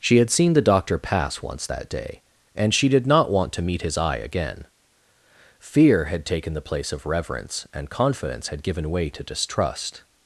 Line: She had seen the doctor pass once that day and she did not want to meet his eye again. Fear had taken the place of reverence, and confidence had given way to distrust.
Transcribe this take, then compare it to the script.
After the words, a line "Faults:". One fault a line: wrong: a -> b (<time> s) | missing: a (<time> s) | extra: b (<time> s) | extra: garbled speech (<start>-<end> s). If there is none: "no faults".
She had seen the doctor pass once that day and she did not want to meet his eye again. Fear had taken the place of reverence, and confidence had given way to distrust.
Faults:
no faults